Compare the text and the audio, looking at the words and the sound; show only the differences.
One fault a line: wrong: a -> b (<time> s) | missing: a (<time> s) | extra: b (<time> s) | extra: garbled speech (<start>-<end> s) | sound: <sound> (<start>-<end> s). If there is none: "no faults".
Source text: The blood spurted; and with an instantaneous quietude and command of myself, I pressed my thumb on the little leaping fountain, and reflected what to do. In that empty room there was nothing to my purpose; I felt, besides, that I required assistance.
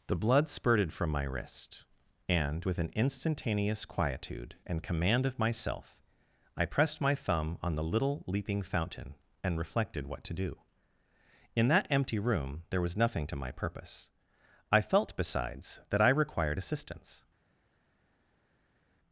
extra: from my wrist (0.9 s)